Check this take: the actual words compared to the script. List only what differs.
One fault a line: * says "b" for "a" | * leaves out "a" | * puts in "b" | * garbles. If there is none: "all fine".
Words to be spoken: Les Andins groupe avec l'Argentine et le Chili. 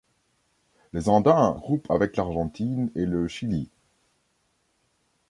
all fine